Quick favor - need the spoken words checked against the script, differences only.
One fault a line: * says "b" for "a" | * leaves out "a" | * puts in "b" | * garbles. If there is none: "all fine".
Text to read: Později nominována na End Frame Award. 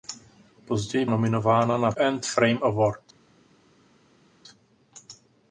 all fine